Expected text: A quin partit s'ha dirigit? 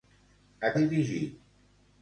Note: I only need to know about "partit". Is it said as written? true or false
false